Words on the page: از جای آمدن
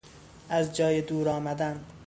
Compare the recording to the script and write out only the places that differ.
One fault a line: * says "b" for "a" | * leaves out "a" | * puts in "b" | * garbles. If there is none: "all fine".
* puts in "دور"